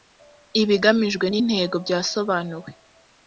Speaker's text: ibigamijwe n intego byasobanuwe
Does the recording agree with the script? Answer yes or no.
yes